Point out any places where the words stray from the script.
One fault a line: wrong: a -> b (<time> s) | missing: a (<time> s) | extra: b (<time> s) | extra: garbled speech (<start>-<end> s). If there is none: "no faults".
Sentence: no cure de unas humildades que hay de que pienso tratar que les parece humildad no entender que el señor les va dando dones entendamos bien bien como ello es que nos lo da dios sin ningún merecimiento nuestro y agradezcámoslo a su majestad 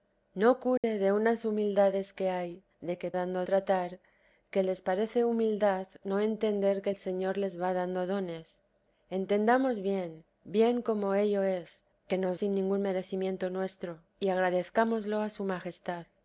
wrong: pienso -> dando (3.1 s)
missing: lo da dios (12.4 s)